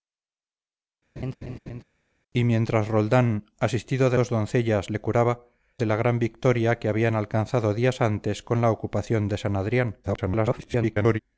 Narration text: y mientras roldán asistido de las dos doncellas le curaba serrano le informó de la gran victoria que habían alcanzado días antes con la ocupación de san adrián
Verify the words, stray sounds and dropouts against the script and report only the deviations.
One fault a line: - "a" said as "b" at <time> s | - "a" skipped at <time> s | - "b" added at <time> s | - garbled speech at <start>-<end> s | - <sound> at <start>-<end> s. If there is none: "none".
- laugh at 1.2-1.8 s
- "las" skipped at 4.2 s
- "serrano le informó" skipped at 5.5 s
- garbled speech at 10.0-11.2 s